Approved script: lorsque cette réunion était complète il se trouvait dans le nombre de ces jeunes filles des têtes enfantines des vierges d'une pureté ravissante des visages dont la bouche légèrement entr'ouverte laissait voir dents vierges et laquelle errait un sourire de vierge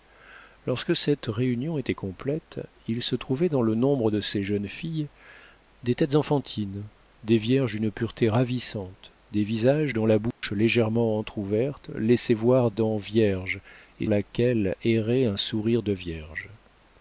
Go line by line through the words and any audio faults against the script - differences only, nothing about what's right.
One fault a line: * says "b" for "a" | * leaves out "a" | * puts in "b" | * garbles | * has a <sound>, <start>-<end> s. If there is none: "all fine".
* has a dropout, 10.3-10.4 s